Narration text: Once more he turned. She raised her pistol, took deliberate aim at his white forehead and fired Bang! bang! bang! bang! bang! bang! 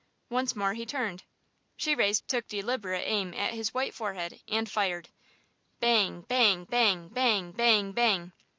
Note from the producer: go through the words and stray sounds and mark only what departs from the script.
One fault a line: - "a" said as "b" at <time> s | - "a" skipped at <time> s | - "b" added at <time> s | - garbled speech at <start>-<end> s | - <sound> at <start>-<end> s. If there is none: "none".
- "her pistol" skipped at 2.2 s